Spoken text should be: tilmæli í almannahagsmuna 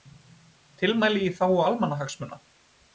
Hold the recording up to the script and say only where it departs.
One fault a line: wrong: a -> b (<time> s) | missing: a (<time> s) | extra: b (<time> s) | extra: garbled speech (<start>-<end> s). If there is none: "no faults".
extra: þágu (1.4 s)